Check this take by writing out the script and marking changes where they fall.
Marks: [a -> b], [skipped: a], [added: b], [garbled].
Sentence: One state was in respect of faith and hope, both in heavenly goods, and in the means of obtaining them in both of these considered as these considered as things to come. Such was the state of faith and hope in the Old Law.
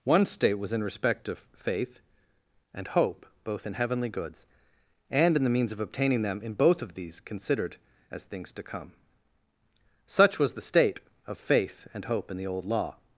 One state was in respect of faith and hope, both in heavenly goods, and in the means of obtaining them in both of these considered as [skipped: these considered as] things to come. Such was the state of faith and hope in the Old Law.